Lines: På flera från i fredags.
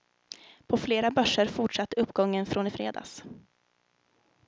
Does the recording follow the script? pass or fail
fail